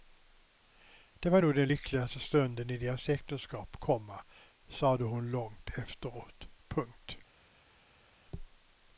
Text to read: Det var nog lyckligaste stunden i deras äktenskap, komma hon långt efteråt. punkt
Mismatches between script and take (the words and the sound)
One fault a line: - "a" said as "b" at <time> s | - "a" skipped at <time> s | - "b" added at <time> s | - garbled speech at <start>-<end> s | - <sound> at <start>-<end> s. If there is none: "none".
- "den" added at 1.5 s
- "sade" added at 4.7 s